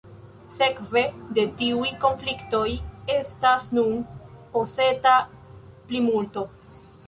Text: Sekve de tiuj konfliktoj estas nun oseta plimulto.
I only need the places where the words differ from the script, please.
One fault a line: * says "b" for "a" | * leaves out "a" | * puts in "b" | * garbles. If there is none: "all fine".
all fine